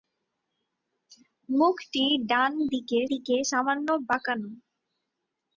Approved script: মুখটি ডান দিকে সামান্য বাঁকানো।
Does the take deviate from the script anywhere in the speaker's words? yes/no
yes